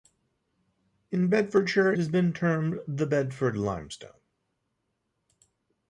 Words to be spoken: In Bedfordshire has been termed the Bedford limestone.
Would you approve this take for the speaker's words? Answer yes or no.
yes